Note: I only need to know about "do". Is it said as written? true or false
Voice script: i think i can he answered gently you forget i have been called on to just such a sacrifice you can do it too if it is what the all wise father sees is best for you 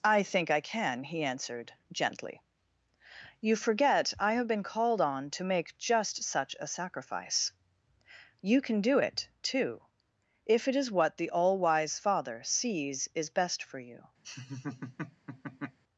true